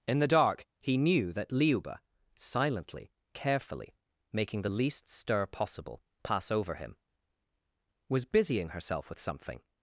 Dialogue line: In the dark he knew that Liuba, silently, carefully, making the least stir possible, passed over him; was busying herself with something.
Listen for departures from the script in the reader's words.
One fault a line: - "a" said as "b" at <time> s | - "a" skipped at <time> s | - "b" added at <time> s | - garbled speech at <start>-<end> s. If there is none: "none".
- "passed" said as "pass" at 6.2 s